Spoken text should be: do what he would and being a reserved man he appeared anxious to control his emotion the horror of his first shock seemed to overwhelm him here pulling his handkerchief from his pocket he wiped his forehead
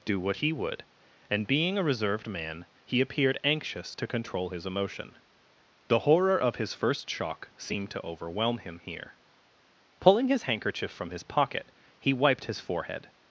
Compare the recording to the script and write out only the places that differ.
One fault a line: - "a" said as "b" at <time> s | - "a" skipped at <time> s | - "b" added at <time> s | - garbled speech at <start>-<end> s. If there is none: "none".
none